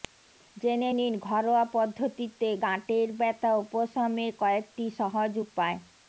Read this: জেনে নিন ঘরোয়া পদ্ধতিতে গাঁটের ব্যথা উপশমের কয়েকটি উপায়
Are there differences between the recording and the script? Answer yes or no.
yes